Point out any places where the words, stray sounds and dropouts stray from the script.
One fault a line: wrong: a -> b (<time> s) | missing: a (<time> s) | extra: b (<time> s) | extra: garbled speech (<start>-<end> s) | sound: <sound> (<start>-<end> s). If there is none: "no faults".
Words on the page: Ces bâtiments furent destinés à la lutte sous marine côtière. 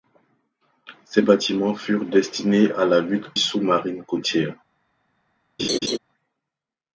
sound: laugh (5.6-6.0 s)